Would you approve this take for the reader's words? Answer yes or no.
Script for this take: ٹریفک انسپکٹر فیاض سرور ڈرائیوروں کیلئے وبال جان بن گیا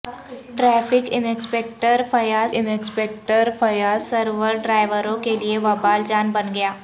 no